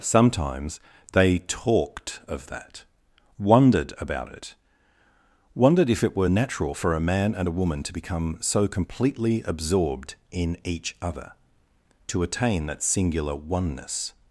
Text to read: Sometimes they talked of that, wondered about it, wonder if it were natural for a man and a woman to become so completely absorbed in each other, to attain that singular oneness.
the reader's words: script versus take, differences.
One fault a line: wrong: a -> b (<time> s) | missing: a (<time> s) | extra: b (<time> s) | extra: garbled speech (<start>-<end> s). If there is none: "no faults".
wrong: wonder -> wondered (5.5 s)